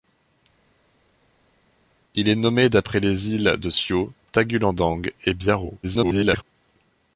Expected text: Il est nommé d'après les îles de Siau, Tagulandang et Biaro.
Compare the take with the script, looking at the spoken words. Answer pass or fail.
fail